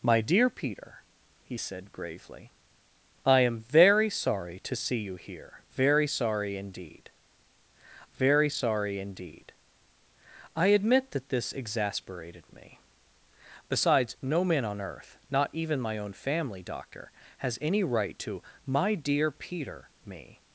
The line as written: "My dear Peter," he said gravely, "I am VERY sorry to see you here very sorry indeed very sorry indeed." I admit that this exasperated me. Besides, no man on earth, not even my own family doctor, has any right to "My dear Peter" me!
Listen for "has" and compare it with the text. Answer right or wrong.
right